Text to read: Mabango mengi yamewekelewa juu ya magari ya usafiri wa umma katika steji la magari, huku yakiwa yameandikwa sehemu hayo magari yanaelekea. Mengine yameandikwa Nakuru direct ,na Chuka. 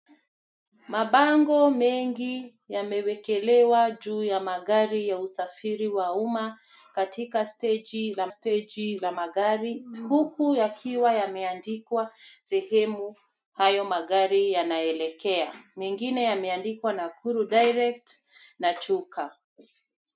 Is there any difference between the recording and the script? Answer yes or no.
yes